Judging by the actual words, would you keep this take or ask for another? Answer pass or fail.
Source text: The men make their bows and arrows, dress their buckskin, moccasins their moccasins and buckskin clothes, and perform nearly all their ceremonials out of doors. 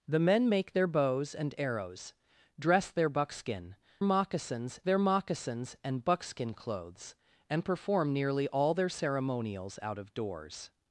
pass